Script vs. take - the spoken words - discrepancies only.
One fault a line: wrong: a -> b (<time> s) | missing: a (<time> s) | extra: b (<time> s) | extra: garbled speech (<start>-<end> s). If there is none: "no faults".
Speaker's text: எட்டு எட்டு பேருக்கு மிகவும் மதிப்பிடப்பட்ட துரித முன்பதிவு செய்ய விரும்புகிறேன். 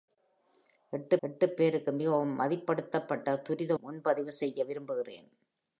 no faults